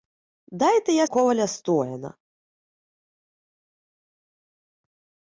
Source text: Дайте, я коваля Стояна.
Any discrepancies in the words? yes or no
no